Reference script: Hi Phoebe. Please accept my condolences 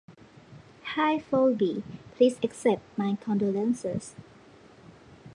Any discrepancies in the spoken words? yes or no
no